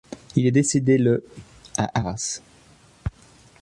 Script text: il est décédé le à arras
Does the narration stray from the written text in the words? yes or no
no